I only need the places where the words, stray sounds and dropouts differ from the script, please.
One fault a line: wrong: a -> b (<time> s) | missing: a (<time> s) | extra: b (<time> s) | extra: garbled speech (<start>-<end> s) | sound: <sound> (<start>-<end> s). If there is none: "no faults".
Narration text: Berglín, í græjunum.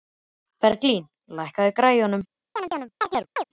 extra: lækkaðu (1.4 s)
sound: chirp (2.6-3.4 s)